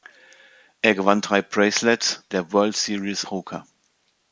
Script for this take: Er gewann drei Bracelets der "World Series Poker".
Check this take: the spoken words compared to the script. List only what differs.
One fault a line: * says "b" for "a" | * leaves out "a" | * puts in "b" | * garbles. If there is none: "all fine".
all fine